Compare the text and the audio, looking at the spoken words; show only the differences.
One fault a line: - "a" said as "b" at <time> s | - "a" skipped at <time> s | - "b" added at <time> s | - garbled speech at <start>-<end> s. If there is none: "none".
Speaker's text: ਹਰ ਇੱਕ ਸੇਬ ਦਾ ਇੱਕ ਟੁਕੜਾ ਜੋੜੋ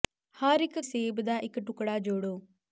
none